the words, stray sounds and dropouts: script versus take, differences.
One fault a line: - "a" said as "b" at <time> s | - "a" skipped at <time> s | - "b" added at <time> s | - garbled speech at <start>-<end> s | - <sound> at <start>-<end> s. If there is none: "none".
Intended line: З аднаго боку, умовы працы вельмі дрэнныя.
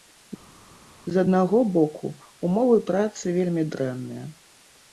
none